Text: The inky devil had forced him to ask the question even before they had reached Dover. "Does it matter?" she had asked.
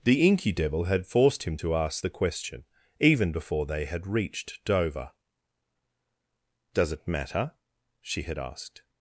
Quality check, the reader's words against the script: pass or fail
pass